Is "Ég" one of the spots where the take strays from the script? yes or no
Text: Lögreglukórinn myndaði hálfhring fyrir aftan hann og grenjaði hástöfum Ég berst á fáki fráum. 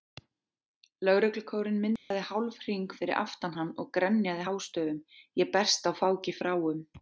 no